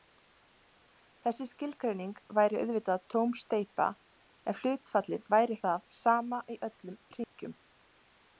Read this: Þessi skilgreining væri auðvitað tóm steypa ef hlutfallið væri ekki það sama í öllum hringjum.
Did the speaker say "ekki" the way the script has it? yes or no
no